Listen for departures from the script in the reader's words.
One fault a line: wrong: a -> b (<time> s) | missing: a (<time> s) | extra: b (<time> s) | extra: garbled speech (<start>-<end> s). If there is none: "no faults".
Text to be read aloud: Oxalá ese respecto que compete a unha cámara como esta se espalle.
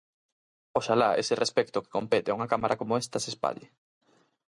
no faults